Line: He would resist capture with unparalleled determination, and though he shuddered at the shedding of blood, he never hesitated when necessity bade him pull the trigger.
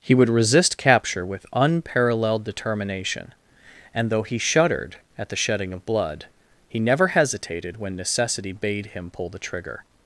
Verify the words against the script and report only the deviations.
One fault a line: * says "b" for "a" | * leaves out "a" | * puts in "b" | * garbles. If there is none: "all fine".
all fine